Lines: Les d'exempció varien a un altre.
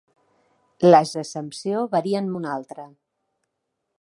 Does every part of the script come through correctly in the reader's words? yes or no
yes